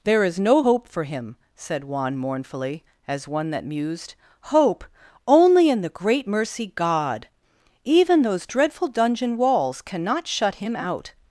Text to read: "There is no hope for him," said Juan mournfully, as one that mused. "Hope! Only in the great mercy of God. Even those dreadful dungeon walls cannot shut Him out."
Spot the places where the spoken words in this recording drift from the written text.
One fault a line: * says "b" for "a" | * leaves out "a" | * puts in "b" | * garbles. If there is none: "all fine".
* leaves out "of"